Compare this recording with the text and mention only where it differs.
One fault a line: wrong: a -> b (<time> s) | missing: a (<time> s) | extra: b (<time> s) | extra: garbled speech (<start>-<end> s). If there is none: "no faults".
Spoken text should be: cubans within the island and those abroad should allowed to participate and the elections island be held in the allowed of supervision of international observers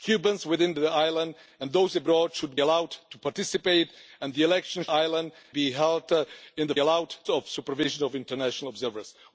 no faults